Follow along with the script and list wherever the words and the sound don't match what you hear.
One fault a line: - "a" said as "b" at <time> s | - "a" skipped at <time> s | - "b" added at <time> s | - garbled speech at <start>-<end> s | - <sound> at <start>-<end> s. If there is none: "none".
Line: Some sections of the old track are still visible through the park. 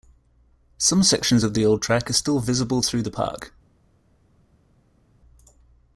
none